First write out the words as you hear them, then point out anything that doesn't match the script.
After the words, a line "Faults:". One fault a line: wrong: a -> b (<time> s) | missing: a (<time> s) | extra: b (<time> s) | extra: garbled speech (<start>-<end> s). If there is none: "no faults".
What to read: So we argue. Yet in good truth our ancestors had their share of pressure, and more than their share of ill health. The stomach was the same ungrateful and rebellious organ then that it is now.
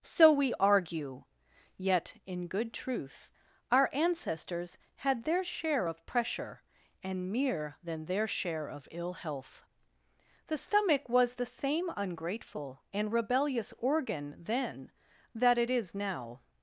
So we argue. Yet in good truth our ancestors had their share of pressure, and mere than their share of ill health. The stomach was the same ungrateful and rebellious organ then that it is now.
Faults:
wrong: more -> mere (7.3 s)